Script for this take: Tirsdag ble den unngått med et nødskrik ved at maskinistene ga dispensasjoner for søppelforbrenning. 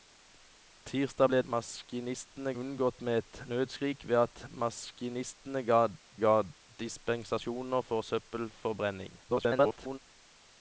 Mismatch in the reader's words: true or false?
true